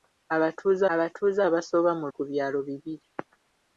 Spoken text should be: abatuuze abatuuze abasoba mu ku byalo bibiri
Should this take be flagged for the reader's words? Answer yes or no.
no